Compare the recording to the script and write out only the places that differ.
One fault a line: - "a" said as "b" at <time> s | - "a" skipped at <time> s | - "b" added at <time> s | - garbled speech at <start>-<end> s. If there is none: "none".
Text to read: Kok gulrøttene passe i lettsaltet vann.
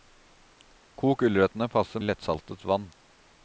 none